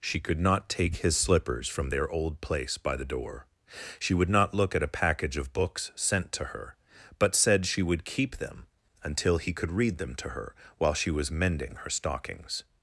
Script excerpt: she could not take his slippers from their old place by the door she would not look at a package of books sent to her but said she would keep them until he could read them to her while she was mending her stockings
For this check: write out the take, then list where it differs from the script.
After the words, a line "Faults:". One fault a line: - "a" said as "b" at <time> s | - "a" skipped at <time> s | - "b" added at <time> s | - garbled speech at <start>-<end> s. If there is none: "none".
she could not take his slippers from their old place by the door she would not look at a package of books sent to her but said she would keep them until he could read them to her while she was mending her stockings
Faults:
none